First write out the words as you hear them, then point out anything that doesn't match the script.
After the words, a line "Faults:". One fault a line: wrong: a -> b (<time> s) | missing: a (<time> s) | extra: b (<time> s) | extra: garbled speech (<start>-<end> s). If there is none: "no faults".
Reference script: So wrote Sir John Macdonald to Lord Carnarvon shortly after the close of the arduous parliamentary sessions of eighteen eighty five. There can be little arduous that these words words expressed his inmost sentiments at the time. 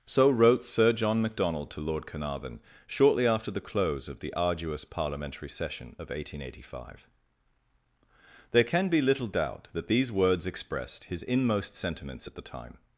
So wrote Sir John Macdonald to Lord Carnarvon shortly after the close of the arduous parliamentary session of eighteen eighty five. There can be little doubt that these words expressed his inmost sentiments at the time.
Faults:
wrong: sessions -> session (5.5 s)
wrong: arduous -> doubt (9.3 s)
missing: words (10.5 s)